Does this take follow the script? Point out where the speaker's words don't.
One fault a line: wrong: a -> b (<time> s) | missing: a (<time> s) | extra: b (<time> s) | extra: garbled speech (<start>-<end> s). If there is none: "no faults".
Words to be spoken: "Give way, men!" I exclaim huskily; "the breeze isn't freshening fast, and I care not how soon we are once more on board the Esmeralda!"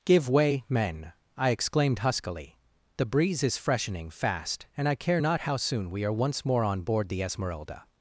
wrong: exclaim -> exclaimed (1.5 s)
wrong: isn't -> is (3.4 s)